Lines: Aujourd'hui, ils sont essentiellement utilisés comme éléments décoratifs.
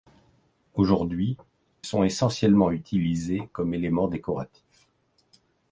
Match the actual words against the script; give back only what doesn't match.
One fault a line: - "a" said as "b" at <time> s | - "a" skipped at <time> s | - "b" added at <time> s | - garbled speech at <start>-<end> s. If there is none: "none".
- "ils" skipped at 1.4 s